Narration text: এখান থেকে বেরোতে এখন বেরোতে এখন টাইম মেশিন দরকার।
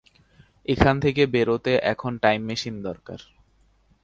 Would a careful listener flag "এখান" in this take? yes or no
no